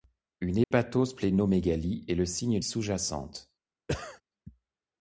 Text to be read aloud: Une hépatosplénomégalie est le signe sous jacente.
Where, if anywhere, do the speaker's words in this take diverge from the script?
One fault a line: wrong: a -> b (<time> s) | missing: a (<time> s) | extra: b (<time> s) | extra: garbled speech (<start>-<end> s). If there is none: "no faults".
no faults